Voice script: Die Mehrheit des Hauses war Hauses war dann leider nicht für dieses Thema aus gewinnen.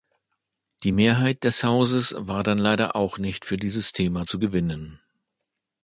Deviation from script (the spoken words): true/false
true